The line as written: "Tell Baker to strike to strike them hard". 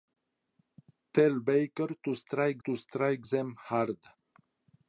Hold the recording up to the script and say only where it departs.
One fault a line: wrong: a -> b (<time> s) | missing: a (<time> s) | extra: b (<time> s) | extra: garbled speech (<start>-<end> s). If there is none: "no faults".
no faults